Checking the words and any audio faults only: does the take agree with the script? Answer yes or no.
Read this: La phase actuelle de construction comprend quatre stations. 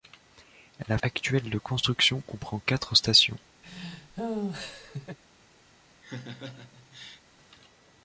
no